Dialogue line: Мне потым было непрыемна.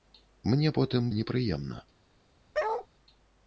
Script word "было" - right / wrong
wrong